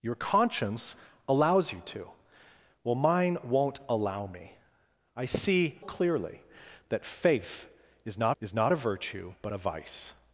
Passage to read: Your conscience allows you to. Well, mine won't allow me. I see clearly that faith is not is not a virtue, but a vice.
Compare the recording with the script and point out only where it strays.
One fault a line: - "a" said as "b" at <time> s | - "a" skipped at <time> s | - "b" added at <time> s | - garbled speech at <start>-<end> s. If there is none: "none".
none